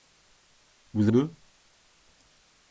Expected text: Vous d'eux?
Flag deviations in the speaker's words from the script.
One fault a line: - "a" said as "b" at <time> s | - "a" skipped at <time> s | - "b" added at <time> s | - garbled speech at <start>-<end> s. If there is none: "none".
none